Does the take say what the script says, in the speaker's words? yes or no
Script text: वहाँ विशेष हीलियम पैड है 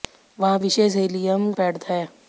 yes